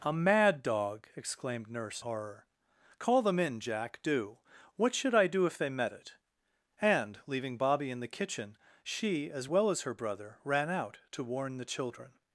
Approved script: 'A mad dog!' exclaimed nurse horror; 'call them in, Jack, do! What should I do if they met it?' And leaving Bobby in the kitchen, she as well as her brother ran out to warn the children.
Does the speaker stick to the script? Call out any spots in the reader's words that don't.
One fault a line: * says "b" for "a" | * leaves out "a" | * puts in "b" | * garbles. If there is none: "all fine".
all fine